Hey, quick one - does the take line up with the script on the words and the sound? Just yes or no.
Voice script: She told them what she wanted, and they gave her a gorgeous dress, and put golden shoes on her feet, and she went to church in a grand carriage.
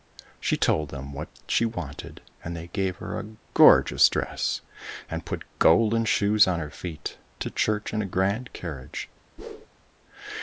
no